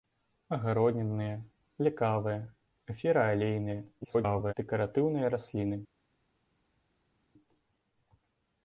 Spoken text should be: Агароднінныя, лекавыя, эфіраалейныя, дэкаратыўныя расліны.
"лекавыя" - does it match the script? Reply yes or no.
yes